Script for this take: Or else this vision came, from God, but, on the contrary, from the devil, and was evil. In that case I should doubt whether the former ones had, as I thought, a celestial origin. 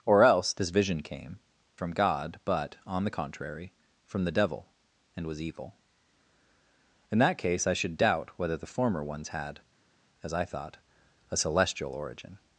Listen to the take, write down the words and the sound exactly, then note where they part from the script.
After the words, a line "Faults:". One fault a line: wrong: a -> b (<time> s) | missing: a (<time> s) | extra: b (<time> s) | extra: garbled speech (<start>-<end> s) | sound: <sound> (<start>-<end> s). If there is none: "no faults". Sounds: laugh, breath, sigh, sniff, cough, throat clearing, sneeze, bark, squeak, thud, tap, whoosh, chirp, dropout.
Or else this vision came, from God, but, on the contrary, from the devil, and was evil. In that case I should doubt whether the former ones had, as I thought, a celestial origin.
Faults:
no faults